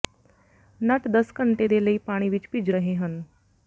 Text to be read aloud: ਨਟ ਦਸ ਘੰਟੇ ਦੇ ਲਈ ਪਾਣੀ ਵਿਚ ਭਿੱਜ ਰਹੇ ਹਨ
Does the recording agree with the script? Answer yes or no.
yes